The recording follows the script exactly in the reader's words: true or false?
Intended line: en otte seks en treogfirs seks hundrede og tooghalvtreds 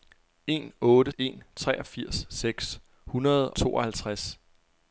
false